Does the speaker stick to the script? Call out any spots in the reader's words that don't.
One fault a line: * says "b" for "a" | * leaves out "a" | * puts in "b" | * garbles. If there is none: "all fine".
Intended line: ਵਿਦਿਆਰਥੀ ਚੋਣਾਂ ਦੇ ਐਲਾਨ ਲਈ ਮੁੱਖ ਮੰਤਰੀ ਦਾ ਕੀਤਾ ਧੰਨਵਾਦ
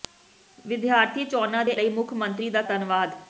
* leaves out "ਐਲਾਨ"
* leaves out "ਕੀਤਾ"